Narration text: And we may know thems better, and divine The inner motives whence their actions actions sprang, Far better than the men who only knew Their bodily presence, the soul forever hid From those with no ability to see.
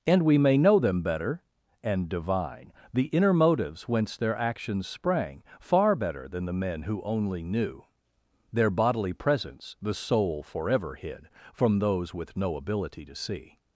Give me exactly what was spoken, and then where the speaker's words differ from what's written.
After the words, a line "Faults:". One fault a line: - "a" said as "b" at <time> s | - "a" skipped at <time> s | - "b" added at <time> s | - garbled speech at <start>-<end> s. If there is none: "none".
And we may know them better, and divine The inner motives whence their actions sprang, Far better than the men who only knew Their bodily presence, the soul forever hid From those with no ability to see.
Faults:
- "thems" said as "them" at 0.8 s
- "actions" skipped at 4.9 s